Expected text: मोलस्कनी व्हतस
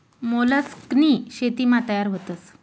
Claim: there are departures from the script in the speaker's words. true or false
true